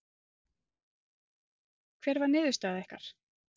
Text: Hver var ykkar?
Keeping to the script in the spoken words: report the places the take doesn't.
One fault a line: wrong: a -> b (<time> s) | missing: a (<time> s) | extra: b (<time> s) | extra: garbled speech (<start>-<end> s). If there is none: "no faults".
extra: niðurstaða (2.3 s)